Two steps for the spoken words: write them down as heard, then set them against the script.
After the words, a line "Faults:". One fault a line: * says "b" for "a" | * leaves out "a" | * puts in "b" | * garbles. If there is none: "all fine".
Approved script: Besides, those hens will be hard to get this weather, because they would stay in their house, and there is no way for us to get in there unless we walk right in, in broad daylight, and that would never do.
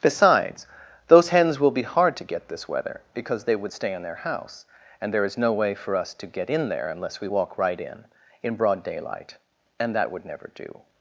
Besides, those hens will be hard to get this weather, because they would stay in their house, and there is no way for us to get in there unless we walk right in, in broad daylight, and that would never do.
Faults:
all fine